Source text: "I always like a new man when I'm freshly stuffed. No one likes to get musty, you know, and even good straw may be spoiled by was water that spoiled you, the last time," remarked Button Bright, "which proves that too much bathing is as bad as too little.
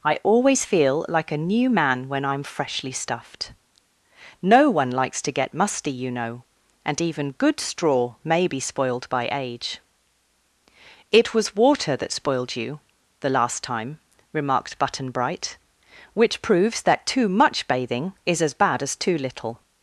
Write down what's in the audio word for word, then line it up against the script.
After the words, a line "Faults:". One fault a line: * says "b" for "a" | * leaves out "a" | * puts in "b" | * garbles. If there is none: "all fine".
"I always feel like a new man when I'm freshly stuffed. No one likes to get musty, you know, and even good straw may be spoiled by age." "It was water that spoiled you, the last time," remarked Button Bright, "which proves that too much bathing is as bad as too little.
Faults:
* puts in "feel"
* puts in "age It"